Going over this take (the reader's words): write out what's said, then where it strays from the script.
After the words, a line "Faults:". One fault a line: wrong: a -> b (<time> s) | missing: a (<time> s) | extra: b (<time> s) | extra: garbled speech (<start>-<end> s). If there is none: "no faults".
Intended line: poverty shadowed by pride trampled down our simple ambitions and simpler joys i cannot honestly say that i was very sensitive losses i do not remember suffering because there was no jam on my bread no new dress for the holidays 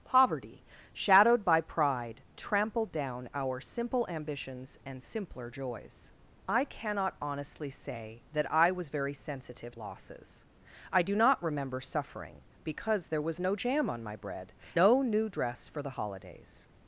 poverty shadowed by pride trampled down our simple ambitions and simpler joys i cannot honestly say that i was very sensitive losses i do not remember suffering because there was no jam on my bread no new dress for the holidays
Faults:
no faults